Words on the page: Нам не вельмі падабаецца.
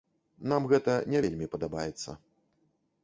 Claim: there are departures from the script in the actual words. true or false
true